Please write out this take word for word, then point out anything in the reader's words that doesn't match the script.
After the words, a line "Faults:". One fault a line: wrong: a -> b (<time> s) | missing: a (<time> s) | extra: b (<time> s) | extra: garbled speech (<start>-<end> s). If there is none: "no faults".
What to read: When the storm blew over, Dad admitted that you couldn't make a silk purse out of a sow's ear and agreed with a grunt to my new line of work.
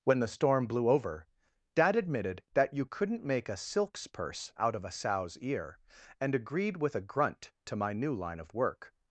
When the storm blew over, Dad admitted that you couldn't make a silks purse out of a sow's ear and agreed with a grunt to my new line of work.
Faults:
wrong: silk -> silks (3.5 s)